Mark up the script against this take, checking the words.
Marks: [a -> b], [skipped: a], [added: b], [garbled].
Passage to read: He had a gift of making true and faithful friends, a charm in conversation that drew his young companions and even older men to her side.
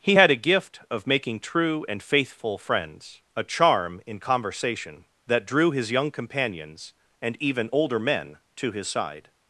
He had a gift of making true and faithful friends, a charm in conversation that drew his young companions and even older men to [her -> his] side.